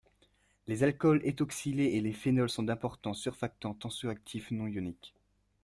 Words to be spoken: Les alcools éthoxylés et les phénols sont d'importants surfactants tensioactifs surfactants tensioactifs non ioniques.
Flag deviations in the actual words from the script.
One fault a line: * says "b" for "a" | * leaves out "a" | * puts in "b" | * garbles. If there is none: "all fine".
* leaves out "surfactants tensioactifs"